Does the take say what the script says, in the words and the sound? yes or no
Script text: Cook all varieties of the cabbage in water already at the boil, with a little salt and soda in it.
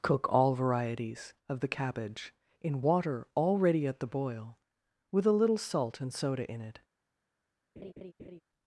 no